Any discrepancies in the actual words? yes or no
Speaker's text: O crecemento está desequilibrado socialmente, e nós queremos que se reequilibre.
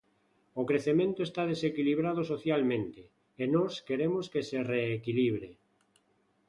no